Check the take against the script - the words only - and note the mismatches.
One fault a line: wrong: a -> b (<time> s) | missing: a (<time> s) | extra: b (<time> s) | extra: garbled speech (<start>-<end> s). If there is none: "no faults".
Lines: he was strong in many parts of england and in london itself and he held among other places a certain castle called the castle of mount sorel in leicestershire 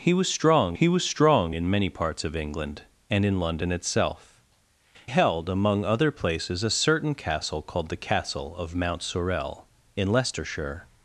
extra: he was strong (0.8 s)
missing: and he (4.4 s)